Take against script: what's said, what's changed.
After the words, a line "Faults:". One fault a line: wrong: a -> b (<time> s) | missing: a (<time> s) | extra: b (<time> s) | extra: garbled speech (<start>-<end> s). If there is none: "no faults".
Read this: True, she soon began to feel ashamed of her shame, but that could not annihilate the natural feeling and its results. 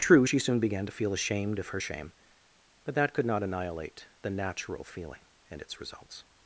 True, she soon began to feel ashamed of her shame, but that could not annihilate the natural feeling and its results.
Faults:
no faults